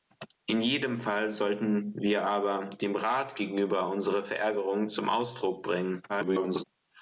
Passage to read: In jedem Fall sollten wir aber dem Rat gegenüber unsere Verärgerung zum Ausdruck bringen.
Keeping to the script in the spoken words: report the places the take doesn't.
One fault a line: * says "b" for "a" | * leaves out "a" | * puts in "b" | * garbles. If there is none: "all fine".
* garbles